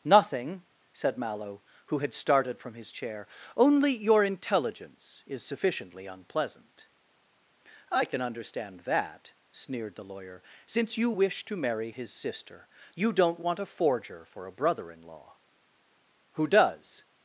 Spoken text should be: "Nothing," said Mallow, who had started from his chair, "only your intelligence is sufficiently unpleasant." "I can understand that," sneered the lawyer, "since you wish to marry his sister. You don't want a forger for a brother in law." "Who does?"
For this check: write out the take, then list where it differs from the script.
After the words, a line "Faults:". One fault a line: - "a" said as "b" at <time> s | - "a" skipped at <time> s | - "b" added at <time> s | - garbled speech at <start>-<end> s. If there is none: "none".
"Nothing," said Mallow, who had started from his chair, "only your intelligence is sufficiently unpleasant." "I can understand that," sneered the lawyer, "since you wish to marry his sister. You don't want a forger for a brother in law." "Who does?"
Faults:
none